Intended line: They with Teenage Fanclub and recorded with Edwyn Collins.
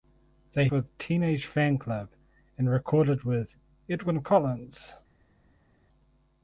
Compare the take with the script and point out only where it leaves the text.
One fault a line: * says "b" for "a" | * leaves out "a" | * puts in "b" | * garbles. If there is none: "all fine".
all fine